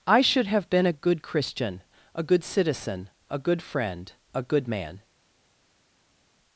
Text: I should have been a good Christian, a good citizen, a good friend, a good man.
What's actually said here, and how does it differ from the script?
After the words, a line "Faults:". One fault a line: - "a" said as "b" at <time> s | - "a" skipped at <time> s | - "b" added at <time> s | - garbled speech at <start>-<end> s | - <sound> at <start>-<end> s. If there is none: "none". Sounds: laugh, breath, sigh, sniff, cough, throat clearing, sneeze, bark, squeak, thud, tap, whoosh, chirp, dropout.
I should have been a good Christian, a good citizen, a good friend, a good man.
Faults:
none